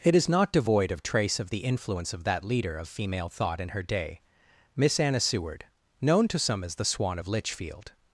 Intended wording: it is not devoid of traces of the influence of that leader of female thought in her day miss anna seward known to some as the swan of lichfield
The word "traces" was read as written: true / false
false